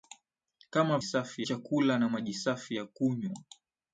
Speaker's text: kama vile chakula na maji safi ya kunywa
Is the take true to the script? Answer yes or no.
no